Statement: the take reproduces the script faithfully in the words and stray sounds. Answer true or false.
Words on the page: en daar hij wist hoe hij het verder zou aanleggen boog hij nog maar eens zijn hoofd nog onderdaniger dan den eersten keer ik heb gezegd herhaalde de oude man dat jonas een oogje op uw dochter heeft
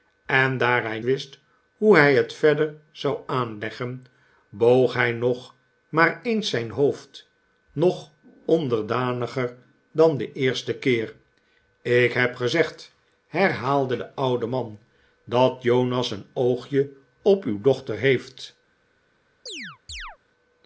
false